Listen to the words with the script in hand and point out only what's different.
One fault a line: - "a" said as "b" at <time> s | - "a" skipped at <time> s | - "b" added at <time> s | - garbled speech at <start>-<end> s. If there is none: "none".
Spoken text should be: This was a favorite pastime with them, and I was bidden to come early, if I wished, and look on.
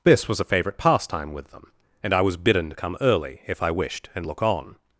none